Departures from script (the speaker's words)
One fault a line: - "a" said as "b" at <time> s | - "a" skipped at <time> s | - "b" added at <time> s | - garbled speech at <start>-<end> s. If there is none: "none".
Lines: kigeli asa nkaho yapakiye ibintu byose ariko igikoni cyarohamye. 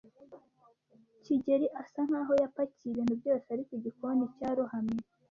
none